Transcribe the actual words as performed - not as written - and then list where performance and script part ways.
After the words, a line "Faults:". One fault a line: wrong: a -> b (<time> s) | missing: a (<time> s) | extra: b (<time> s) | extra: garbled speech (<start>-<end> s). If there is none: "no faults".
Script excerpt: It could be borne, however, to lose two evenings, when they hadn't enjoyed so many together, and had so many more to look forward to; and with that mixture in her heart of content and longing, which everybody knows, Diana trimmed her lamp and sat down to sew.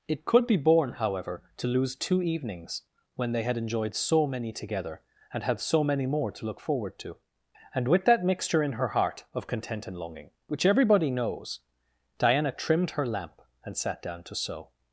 It could be borne, however, to lose two evenings, when they had enjoyed so many together, and had so many more to look forward to; and with that mixture in her heart of content and longing, which everybody knows, Diana trimmed her lamp and sat down to sew.
Faults:
wrong: hadn't -> had (3.4 s)